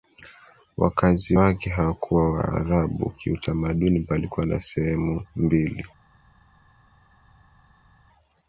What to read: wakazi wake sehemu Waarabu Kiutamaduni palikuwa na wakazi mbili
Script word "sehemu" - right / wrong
wrong